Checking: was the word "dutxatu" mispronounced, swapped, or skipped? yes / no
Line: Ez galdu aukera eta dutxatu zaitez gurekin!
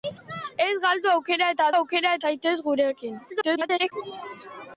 yes